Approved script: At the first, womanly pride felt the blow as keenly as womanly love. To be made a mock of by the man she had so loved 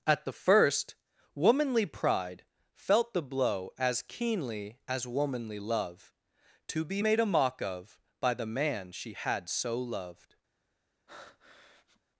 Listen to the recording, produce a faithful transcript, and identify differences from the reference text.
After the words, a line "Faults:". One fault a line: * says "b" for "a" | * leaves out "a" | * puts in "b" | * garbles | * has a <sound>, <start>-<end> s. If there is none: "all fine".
At the first, womanly pride felt the blow as keenly as womanly love. To be made a mock of by the man she had so loved
Faults:
* has a breath, 11.1-12.0 s